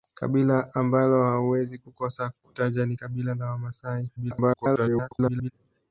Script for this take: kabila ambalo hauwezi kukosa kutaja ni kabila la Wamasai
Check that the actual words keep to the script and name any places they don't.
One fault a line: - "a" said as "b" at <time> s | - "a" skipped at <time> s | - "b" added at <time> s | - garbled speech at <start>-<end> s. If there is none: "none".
- garbled speech at 4.2-5.5 s